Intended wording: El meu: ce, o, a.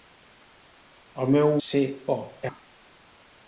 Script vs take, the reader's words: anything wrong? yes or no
no